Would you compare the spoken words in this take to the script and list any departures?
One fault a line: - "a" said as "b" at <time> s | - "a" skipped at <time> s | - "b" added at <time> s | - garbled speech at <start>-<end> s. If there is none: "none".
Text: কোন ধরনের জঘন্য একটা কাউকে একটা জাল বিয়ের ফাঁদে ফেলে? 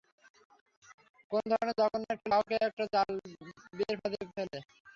none